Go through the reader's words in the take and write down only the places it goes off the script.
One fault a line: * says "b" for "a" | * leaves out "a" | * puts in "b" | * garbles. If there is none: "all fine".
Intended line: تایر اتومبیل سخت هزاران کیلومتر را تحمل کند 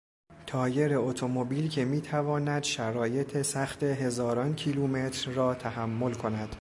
* puts in "که میتواند شرایط"